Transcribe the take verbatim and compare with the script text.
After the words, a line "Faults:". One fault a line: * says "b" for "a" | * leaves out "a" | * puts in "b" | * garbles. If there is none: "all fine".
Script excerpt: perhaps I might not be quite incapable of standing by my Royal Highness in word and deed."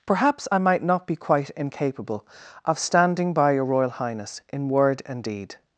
perhaps I might not be quite incapable of standing by your Royal Highness in word and deed."
Faults:
* says "your" for "my"